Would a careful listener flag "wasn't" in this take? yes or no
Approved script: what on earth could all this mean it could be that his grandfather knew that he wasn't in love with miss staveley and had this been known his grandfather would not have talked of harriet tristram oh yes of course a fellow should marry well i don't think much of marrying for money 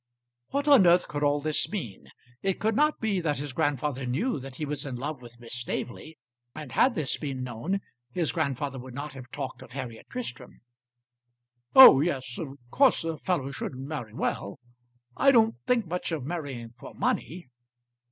yes